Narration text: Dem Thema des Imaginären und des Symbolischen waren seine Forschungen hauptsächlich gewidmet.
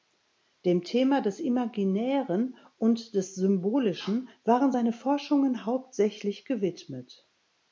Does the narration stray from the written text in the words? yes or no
no